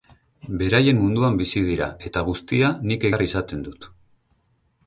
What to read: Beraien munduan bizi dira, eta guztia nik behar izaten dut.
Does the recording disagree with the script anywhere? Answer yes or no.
no